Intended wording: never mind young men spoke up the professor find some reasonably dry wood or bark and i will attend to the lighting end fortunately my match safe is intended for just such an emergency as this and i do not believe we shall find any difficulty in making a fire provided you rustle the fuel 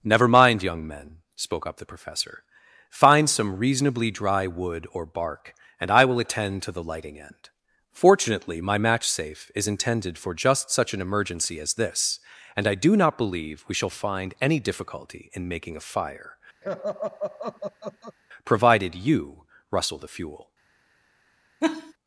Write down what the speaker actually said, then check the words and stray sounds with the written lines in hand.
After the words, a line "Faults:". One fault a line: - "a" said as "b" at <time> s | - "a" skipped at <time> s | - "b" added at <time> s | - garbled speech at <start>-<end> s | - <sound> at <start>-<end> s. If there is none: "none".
never mind young men spoke up the professor find some reasonably dry wood or bark and i will attend to the lighting end fortunately my match safe is intended for just such an emergency as this and i do not believe we shall find any difficulty in making a fire provided you rustle the fuel
Faults:
- laugh at 16.6-18.2 s
- laugh at 21.6-21.9 s